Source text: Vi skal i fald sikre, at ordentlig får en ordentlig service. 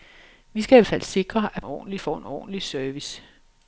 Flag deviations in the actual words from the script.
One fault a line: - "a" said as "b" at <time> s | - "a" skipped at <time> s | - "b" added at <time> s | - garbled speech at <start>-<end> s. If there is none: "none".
none